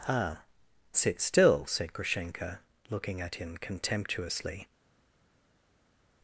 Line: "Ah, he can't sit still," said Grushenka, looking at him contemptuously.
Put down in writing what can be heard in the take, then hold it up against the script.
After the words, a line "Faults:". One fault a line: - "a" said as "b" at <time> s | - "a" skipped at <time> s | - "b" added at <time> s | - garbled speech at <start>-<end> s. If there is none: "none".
"Ah, sit still," said Grushenka, looking at him contemptuously.
Faults:
- "he can't" skipped at 0.4 s